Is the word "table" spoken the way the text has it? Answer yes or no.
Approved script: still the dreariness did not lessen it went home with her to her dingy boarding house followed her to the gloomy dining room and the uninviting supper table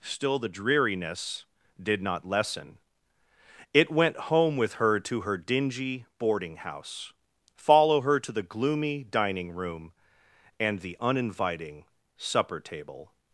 yes